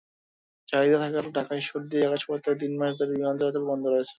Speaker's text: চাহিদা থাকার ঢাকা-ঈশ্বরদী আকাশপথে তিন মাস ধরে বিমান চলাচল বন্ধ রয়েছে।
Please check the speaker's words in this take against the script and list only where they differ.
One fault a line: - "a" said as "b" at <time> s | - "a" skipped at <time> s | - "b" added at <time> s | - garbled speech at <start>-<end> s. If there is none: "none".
none